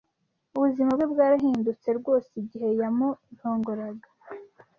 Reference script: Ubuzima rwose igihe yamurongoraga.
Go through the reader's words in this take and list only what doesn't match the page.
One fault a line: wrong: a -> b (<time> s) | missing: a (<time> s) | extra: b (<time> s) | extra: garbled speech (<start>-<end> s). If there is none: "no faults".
extra: bwe bwarahindutse (0.9 s)